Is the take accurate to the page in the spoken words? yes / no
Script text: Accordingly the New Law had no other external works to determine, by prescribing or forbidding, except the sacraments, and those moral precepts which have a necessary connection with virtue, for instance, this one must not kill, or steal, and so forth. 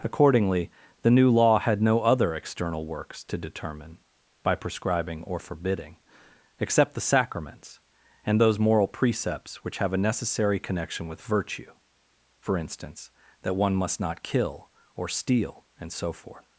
no